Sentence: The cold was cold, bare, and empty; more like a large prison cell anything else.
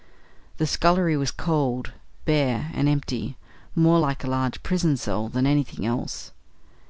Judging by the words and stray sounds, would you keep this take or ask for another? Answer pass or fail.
fail